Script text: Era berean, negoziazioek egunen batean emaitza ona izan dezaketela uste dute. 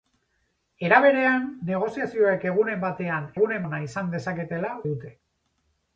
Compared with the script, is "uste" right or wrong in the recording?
wrong